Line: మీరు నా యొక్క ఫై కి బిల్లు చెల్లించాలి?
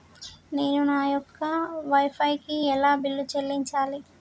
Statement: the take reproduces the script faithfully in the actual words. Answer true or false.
false